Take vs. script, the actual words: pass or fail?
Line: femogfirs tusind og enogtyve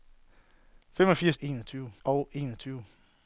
fail